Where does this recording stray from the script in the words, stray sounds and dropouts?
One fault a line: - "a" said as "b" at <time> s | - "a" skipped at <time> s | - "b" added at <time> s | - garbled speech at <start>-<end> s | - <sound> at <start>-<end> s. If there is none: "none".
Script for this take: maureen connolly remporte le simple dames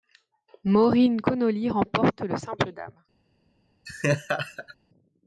- laugh at 3.9-4.8 s